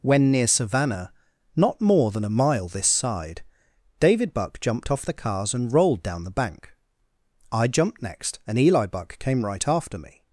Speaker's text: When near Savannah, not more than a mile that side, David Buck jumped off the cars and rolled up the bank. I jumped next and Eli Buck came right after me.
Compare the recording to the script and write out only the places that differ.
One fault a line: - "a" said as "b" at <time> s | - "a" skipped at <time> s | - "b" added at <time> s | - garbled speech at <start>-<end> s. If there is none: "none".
- "that" said as "this" at 2.7 s
- "up" said as "down" at 6.0 s